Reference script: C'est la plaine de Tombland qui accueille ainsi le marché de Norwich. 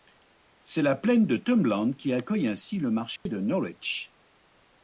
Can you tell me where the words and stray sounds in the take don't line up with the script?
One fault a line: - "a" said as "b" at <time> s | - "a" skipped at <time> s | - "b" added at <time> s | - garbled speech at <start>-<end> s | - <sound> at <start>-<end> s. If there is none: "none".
- dropout at 3.2-3.3 s